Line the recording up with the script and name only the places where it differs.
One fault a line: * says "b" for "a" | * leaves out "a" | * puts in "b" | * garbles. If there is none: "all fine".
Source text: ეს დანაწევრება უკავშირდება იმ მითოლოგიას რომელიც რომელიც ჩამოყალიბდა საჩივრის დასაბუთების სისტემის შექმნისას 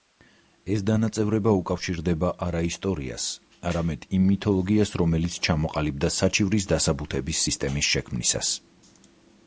* puts in "არა ისტორიას არამედ"
* leaves out "რომელიც"